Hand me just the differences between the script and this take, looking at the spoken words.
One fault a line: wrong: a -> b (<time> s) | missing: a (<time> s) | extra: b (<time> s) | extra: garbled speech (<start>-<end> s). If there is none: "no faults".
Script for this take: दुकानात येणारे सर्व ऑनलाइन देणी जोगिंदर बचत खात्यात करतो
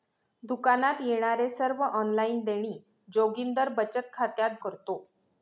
no faults